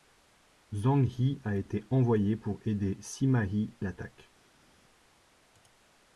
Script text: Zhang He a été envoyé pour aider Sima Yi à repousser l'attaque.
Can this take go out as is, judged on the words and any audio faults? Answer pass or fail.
fail